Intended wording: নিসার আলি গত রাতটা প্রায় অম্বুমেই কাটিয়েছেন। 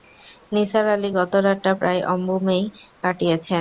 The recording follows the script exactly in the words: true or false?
true